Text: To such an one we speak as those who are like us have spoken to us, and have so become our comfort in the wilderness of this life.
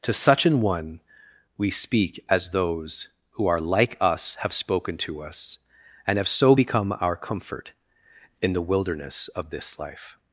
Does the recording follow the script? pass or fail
pass